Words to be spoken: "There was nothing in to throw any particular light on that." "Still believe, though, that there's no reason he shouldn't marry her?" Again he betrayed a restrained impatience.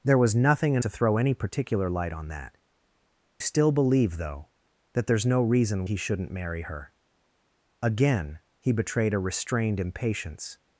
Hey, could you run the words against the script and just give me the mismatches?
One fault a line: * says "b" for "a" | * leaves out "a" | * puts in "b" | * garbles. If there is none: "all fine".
all fine